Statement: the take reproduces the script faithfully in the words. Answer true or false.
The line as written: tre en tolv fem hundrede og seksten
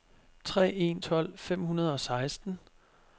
true